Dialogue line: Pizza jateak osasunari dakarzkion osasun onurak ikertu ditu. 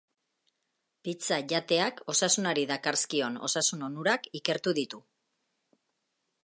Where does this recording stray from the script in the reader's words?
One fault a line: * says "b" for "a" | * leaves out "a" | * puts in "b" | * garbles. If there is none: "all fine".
all fine